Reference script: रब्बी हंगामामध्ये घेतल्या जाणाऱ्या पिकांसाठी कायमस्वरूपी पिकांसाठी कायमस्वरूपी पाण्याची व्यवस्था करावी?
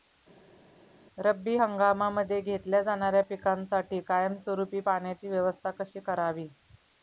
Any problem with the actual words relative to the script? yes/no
yes